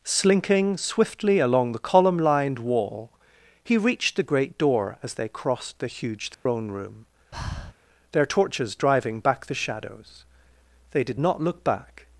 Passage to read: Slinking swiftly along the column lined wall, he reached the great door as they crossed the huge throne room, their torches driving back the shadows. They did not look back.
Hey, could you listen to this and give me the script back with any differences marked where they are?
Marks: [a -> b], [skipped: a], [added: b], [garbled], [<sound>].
Slinking swiftly along the column lined wall, he reached the great door as they crossed the huge throne [dropout] room, [breath] their torches driving back the shadows. They did not look back.